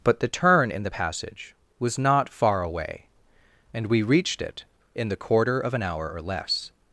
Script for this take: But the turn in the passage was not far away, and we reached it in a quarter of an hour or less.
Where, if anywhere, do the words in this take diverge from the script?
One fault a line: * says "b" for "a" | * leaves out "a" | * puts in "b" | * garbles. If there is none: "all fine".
* says "the" for "a"